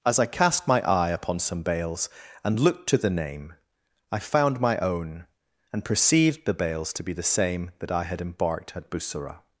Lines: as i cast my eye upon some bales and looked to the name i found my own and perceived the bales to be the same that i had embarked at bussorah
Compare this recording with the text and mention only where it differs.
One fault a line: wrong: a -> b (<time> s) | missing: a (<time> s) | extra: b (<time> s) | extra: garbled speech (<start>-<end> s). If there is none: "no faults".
no faults